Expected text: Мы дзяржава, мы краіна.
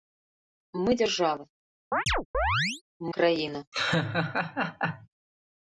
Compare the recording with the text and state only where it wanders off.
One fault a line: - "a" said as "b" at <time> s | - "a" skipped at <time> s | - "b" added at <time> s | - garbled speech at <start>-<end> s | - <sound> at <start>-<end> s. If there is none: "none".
- "мы" skipped at 1.4 s
- chirp at 1.9-2.8 s
- laugh at 3.7-5.1 s